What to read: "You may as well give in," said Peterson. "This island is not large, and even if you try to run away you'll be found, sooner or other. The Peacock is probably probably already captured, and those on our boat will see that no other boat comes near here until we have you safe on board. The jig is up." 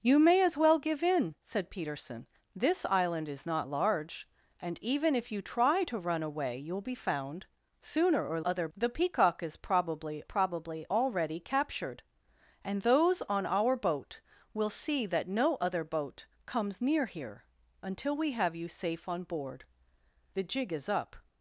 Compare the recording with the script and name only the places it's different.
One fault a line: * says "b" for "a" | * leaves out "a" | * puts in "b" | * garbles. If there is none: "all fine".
all fine